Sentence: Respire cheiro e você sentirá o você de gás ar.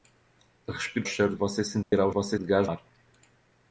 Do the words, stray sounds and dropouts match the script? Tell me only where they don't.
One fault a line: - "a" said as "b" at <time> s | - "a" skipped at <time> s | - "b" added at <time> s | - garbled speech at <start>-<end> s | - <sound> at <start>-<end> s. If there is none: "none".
- dropout at 1.8-1.9 s